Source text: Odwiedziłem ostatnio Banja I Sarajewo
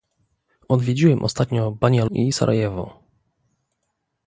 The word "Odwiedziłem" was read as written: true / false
true